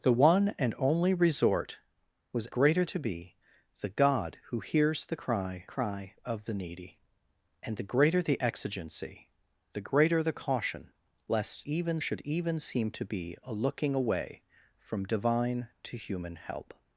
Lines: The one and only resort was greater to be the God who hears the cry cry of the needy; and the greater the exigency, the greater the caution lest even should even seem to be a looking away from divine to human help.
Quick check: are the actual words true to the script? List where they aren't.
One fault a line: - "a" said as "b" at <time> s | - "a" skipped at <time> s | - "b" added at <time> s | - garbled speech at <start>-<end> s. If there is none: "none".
none